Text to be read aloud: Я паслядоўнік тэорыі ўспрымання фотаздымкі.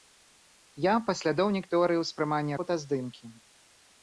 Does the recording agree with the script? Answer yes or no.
yes